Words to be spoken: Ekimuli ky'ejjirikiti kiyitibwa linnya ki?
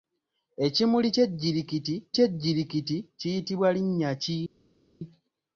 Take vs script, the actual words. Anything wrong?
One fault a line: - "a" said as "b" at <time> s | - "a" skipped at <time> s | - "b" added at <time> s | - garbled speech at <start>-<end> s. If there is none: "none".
- "ky'ejjirikiti" added at 2.2 s